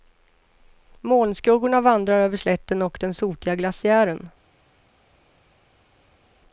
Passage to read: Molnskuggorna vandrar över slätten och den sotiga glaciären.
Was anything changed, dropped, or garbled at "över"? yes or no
no